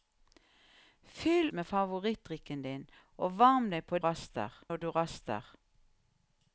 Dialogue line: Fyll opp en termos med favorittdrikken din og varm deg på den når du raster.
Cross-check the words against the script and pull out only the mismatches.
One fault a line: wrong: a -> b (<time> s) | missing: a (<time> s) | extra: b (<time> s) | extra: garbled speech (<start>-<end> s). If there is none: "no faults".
missing: opp en termos (1.5 s)
wrong: den -> raster (4.0 s)